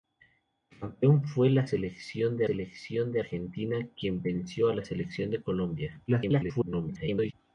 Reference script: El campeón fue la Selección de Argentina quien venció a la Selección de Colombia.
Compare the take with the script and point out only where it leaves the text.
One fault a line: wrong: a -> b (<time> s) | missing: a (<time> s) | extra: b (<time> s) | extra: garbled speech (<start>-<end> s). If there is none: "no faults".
extra: Selección de (2.4 s)
extra: garbled speech (6.1-7.3 s)